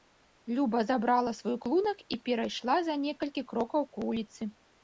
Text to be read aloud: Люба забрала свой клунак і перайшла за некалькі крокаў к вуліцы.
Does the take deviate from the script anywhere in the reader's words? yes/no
no